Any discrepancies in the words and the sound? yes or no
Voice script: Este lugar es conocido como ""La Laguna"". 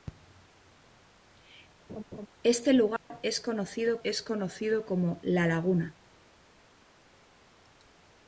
yes